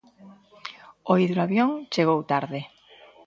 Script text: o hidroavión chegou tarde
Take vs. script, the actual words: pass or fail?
pass